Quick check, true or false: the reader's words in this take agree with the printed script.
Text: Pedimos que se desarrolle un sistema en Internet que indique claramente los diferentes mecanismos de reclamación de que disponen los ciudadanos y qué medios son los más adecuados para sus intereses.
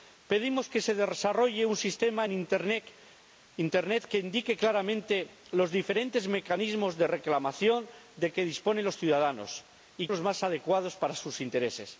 false